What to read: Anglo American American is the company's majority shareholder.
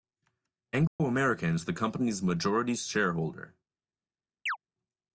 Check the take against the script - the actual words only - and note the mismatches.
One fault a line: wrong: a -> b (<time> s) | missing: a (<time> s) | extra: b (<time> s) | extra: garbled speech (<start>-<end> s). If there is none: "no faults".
missing: American (1.6 s)